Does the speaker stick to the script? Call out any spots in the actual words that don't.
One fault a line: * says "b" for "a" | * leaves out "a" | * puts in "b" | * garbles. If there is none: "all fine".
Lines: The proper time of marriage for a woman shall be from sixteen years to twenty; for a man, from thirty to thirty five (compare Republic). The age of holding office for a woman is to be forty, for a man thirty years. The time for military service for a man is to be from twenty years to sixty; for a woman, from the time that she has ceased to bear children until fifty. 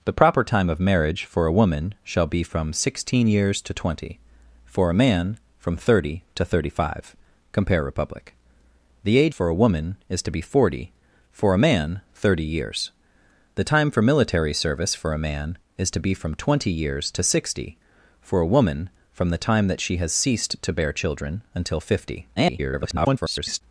* leaves out "of holding office"
* garbles